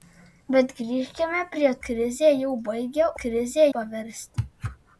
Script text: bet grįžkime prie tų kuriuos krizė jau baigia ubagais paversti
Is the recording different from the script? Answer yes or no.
yes